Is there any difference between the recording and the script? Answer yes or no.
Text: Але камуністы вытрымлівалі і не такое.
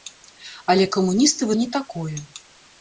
yes